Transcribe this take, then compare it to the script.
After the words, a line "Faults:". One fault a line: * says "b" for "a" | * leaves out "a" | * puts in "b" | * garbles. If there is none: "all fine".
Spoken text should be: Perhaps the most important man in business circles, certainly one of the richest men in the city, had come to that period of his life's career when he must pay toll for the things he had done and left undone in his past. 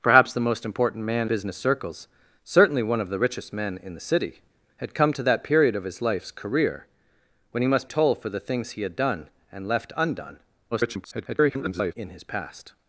Perhaps the most important man business circles, certainly one of the richest men in the city, had come to that period of his life's career when he must toll for the things he had done and left undone [garbled] in his past.
Faults:
* leaves out "in"
* leaves out "pay"
* garbles